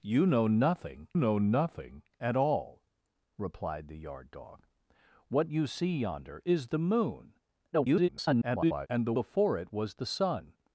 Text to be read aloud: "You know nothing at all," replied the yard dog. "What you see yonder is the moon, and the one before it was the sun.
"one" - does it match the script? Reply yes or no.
no